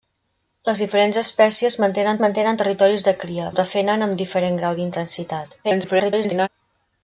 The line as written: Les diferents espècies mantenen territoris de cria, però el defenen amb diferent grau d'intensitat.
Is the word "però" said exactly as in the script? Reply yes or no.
no